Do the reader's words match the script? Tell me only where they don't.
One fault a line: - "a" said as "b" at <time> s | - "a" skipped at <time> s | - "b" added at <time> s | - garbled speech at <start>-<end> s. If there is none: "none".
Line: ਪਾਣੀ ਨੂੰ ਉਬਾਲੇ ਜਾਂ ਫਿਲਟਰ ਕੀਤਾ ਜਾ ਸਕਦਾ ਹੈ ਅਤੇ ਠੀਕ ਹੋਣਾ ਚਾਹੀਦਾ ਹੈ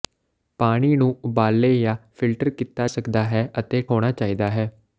- "ਜਾ" skipped at 2.9 s
- "ਠੀਕ" skipped at 3.8 s